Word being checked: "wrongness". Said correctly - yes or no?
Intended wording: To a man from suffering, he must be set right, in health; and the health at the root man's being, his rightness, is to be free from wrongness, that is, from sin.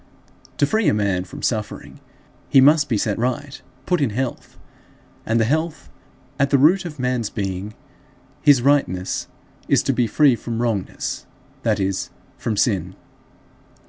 yes